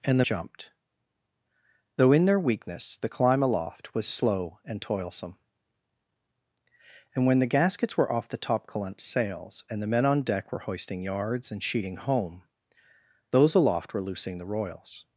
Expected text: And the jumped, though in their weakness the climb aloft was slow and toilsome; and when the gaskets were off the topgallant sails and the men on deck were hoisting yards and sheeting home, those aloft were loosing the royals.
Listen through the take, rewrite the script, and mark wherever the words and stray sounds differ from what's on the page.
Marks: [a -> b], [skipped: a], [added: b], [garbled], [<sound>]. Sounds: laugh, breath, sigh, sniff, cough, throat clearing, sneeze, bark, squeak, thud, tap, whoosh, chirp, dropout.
And the jumped, though in their weakness the climb aloft was slow and toilsome; and when the gaskets were off the topgallant sails and the men on deck were hoisting yards and sheeting home, those aloft were loosing the royals.